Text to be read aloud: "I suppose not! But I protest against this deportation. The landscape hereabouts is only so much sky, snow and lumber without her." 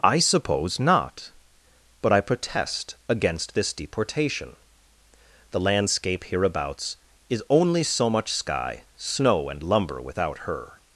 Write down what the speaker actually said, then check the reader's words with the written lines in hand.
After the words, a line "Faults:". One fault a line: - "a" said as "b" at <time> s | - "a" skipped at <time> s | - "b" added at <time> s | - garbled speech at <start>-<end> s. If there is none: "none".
"I suppose not! But I protest against this deportation. The landscape hereabouts is only so much sky, snow and lumber without her."
Faults:
none